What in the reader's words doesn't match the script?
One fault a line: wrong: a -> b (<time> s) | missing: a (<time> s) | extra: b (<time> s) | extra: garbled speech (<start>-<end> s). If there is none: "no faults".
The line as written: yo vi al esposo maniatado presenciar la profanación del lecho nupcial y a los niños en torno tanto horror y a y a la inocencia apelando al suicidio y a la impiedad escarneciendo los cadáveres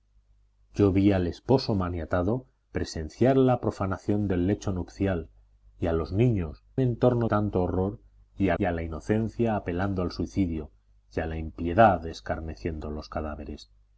no faults